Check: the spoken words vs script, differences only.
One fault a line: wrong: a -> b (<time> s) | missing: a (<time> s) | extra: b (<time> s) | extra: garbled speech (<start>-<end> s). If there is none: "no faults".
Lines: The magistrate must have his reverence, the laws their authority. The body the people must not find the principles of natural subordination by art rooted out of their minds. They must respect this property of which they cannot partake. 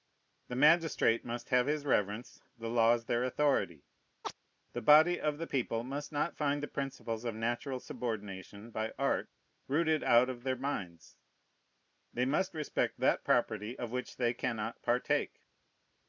extra: of (5.2 s)
wrong: this -> that (13.0 s)